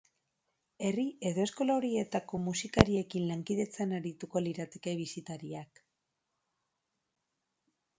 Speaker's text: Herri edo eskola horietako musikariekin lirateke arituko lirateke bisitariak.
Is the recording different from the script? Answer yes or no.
yes